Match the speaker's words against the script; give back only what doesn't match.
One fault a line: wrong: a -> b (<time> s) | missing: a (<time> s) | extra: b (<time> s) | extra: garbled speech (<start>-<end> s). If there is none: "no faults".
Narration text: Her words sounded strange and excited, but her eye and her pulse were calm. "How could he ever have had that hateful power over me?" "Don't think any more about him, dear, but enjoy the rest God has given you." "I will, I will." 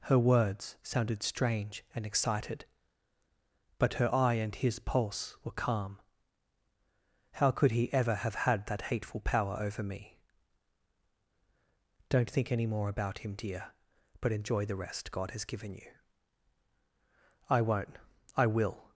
wrong: her -> his (4.5 s)
wrong: will -> won't (17.6 s)